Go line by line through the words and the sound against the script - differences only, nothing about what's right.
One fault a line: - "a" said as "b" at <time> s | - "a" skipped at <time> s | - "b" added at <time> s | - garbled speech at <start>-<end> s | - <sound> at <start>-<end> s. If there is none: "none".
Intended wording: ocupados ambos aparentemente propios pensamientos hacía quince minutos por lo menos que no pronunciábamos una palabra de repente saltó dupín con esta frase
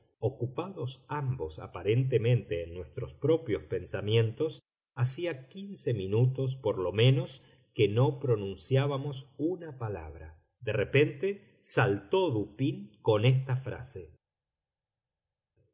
- "en nuestros" added at 2.6 s